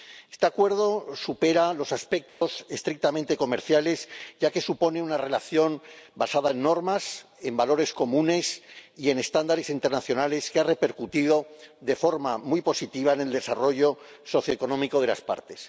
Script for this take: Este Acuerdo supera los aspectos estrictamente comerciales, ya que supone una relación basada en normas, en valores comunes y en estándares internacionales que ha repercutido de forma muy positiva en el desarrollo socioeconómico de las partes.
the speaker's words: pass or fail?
pass